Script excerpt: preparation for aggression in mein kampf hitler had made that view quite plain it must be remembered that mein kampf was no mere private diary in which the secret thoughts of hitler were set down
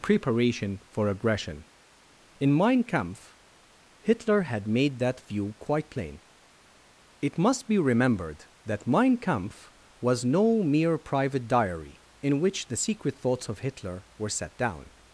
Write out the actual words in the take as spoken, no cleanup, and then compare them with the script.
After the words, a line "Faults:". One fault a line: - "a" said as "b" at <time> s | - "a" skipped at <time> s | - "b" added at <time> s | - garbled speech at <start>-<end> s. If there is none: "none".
preparation for aggression in mein kampf hitler had made that view quite plain it must be remembered that mein kampf was no mere private diary in which the secret thoughts of hitler were set down
Faults:
none